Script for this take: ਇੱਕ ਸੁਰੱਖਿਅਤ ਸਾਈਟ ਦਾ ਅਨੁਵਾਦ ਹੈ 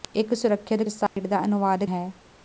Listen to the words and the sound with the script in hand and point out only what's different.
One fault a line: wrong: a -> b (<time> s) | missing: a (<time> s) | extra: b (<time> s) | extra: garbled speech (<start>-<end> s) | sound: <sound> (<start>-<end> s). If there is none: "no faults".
sound: dropout (1.1-1.2 s)